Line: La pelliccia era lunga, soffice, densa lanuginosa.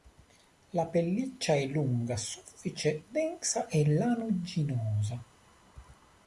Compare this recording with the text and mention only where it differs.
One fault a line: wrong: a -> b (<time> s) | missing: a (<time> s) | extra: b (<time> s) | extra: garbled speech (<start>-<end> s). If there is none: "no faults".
wrong: era -> è (1.5 s)
extra: e (3.7 s)